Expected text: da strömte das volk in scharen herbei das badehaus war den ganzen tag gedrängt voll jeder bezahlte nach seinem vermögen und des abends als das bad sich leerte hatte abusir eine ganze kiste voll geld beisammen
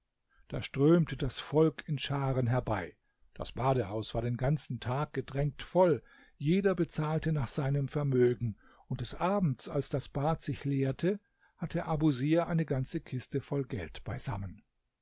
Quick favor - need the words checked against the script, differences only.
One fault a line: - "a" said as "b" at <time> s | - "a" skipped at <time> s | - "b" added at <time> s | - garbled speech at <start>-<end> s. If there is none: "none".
none